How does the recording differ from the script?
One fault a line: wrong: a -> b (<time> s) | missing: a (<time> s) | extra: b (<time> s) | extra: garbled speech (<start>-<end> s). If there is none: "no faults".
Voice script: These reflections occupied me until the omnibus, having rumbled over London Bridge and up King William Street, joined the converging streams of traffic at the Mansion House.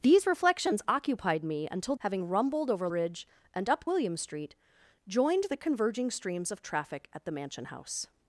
missing: the omnibus (1.9 s)
missing: London (2.9 s)
missing: King (3.9 s)